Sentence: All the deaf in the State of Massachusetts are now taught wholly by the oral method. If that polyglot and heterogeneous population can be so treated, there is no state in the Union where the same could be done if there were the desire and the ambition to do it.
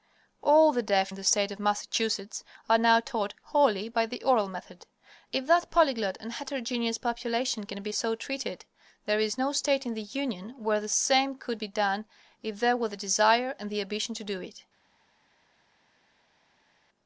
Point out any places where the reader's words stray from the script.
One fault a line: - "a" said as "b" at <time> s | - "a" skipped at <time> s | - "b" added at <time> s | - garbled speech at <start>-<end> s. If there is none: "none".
none